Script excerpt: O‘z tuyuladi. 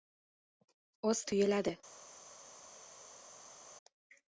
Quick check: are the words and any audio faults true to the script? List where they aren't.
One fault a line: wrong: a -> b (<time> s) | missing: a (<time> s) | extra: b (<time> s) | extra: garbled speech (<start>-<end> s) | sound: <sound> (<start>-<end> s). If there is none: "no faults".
no faults